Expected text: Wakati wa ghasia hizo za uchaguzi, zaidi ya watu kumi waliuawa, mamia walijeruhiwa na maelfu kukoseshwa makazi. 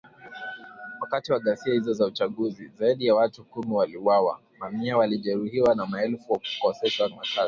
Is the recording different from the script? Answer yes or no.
no